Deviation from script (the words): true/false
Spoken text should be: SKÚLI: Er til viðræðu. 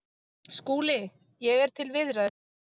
true